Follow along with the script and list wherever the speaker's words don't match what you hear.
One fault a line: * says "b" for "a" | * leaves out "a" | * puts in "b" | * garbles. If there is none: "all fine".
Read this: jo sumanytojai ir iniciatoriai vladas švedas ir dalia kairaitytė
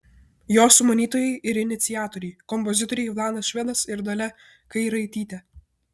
* puts in "kompozitoriai"